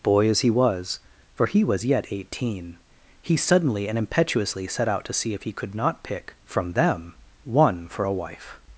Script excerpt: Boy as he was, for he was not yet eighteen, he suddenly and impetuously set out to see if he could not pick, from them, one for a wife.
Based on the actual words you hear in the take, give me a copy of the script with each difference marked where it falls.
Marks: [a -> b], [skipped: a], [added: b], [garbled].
Boy as he was, for he was [skipped: not] yet eighteen, he suddenly and impetuously set out to see if he could not pick, from them, one for a wife.